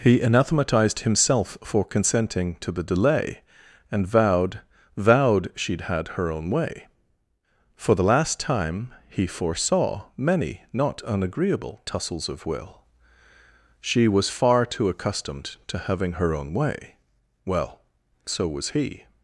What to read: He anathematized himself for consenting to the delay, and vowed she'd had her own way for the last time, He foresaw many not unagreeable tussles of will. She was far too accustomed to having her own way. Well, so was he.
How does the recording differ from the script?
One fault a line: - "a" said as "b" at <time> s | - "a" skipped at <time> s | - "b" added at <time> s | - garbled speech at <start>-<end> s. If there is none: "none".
- "vowed" added at 5.0 s